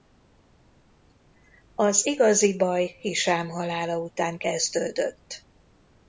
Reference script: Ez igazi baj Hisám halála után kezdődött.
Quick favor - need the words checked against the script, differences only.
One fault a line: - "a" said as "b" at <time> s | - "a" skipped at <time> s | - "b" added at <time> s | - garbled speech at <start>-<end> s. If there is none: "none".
- "Ez" said as "Az" at 1.8 s